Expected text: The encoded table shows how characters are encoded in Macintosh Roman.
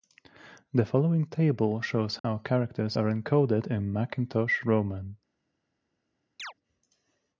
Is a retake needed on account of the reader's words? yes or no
yes